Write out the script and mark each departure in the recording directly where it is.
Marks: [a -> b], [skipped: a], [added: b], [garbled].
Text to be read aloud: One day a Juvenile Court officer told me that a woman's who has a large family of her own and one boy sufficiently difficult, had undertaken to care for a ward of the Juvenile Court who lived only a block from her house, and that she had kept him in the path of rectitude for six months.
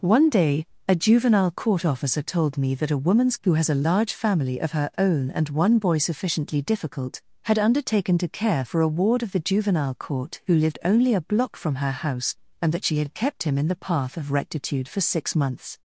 One day a Juvenile Court officer told me that a woman's who has a large family of her own and one boy sufficiently difficult, had undertaken to care for a ward of the Juvenile Court who lived only a block from her house, and that she had kept him in the path of rectitude for six months.